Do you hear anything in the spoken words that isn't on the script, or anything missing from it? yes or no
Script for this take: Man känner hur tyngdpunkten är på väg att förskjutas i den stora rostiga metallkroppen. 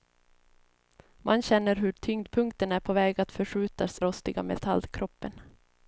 yes